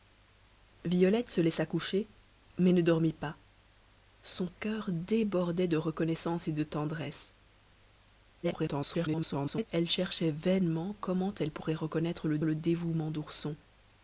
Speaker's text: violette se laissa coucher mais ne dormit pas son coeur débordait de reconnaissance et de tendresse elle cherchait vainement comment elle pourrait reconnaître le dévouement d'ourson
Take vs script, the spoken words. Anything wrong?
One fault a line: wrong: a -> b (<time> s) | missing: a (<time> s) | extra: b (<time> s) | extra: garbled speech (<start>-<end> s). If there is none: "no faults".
extra: garbled speech (8.4-9.7 s)
extra: le (12.4 s)